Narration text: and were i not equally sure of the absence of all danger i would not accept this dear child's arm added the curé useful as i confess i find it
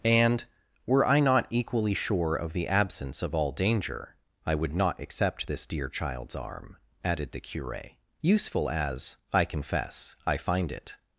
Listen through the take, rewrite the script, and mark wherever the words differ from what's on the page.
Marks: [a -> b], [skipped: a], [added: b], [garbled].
and were i not equally sure of the absence of all danger i would not accept this dear child's arm added the curé useful as i confess i find it